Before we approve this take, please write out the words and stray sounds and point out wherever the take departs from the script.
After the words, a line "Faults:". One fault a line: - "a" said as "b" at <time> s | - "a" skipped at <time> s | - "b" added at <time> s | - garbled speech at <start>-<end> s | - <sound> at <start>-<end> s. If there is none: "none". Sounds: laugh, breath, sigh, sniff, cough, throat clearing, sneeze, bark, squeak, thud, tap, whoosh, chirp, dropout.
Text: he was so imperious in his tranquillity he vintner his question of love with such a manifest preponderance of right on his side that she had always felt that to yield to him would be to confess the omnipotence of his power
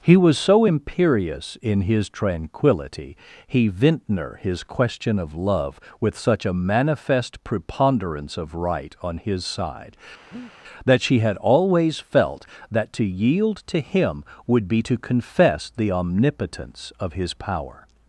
he was so imperious in his tranquillity he vintner his question of love with such a manifest preponderance of right on his side that she had always felt that to yield to him would be to confess the omnipotence of his power
Faults:
- breath at 10.3-10.5 s